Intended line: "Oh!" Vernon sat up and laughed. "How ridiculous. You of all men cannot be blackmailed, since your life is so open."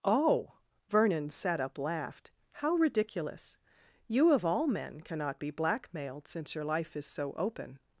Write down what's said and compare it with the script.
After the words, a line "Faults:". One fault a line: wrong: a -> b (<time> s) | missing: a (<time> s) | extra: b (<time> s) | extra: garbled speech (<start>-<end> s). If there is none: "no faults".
"Oh!" Vernon sat up laughed. "How ridiculous. You of all men cannot be blackmailed, since your life is so open."
Faults:
missing: and (1.8 s)